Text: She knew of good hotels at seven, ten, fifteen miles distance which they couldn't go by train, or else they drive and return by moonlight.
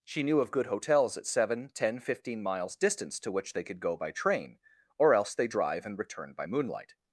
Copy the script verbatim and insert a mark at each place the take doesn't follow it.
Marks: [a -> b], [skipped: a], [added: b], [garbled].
She knew of good hotels at seven, ten, fifteen miles distance [added: to] which they [couldn't -> could] go by train, or else they drive and return by moonlight.